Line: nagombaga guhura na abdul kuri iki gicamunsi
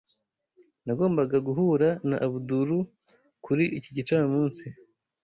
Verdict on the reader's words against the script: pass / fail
pass